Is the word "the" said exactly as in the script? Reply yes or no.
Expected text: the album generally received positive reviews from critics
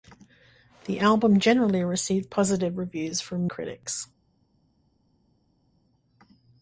yes